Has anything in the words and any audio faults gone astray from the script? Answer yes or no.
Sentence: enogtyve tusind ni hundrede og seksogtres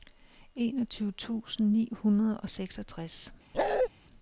yes